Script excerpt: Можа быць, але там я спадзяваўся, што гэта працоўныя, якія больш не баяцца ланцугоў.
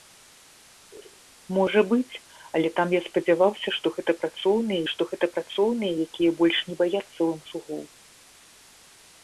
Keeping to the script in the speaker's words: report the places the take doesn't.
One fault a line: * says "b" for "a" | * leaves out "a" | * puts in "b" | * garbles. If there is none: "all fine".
* puts in "што гэта працоўныя"